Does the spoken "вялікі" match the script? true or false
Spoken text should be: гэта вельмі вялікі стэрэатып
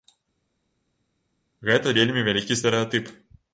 true